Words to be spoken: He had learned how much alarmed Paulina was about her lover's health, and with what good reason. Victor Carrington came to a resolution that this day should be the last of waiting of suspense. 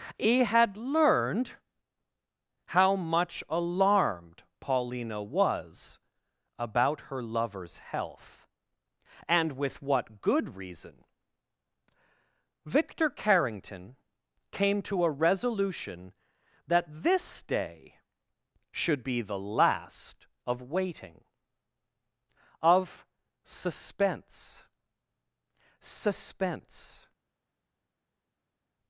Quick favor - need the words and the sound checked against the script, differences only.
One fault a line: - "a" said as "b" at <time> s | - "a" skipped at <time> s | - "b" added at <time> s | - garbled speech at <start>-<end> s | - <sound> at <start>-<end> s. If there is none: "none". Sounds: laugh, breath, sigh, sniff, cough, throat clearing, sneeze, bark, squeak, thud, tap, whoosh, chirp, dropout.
- "suspense" added at 25.8 s